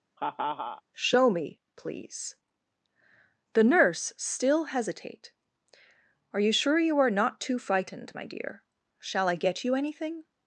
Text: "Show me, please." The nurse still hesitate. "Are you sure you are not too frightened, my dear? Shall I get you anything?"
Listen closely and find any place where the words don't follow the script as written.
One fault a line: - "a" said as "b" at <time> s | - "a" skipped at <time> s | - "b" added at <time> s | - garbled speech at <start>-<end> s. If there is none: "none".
none